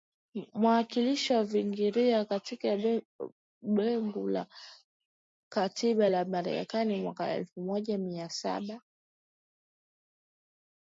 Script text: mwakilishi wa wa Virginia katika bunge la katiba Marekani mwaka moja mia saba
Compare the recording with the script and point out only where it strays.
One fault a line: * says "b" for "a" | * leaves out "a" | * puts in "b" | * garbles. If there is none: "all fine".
* leaves out "wa"
* puts in "la"
* puts in "elfu"